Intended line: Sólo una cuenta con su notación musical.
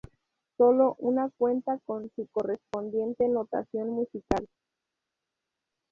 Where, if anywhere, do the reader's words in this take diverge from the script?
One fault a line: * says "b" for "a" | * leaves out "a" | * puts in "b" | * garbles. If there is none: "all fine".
* puts in "correspondiente"